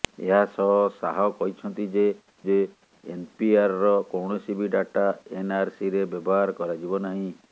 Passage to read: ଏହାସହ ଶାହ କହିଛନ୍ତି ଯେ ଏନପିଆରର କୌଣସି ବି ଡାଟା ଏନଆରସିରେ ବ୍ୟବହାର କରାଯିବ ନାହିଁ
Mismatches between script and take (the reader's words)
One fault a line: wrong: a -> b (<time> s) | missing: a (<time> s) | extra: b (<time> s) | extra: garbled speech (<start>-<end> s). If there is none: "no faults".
extra: ଯେ (2.4 s)